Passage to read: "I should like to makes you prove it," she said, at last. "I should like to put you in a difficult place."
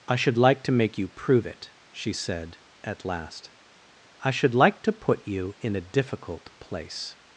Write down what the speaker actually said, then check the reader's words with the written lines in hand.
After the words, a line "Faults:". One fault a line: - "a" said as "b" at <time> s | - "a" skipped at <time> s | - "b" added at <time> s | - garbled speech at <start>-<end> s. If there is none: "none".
"I should like to make you prove it," she said, at last. "I should like to put you in a difficult place."
Faults:
- "makes" said as "make" at 0.7 s